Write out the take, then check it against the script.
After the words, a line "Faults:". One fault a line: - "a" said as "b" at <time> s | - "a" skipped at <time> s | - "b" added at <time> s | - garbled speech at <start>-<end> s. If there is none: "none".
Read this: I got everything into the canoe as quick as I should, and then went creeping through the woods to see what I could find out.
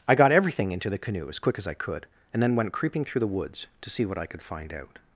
I got everything into the canoe as quick as I could, and then went creeping through the woods to see what I could find out.
Faults:
- "should" said as "could" at 1.8 s